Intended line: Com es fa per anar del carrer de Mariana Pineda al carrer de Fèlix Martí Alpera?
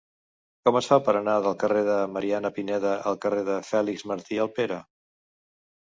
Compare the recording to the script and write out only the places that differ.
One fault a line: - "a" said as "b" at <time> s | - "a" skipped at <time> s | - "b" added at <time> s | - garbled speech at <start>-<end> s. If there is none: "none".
none